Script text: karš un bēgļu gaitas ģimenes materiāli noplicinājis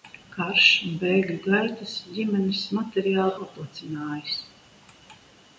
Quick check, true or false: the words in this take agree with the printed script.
true